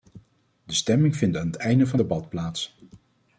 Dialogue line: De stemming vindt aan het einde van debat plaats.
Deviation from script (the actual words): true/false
false